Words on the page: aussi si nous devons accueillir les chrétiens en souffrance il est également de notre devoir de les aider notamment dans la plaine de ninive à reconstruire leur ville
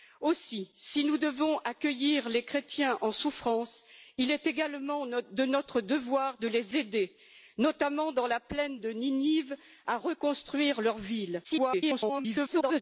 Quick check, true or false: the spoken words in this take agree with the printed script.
false